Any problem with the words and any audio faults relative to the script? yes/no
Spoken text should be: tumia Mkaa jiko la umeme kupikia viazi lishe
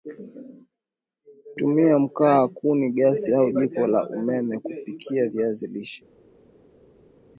yes